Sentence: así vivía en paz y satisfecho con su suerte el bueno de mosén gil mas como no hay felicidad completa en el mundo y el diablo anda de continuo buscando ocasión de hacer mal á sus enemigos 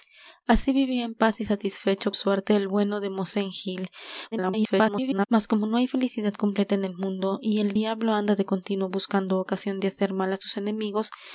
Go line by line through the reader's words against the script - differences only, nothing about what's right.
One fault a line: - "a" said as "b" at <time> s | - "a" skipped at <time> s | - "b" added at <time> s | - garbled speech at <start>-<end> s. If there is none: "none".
- "con su" skipped at 2.1 s
- garbled speech at 4.3-5.3 s